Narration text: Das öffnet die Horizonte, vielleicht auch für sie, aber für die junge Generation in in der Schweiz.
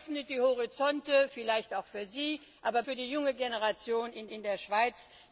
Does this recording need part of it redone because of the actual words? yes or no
no